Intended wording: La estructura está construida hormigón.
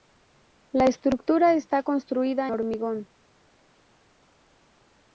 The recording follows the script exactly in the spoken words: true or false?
true